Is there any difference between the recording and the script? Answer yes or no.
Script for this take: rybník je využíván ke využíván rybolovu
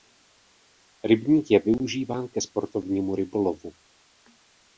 yes